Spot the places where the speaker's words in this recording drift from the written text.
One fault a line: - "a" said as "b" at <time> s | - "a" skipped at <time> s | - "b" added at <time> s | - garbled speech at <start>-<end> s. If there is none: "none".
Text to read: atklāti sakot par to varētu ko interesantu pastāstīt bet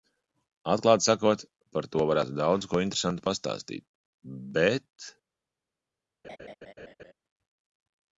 - "daudz" added at 2.4 s